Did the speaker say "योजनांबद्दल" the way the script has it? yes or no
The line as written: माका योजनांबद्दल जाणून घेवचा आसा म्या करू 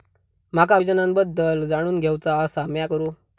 yes